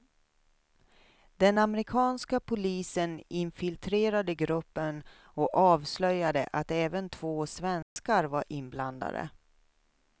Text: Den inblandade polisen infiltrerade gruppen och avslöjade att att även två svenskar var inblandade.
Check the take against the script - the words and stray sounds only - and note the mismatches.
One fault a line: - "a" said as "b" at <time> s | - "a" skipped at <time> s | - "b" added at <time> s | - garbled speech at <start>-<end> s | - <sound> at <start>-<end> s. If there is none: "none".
- "inblandade" said as "amerikanska" at 1.6 s
- "att" skipped at 6.7 s
- dropout at 7.8-8.0 s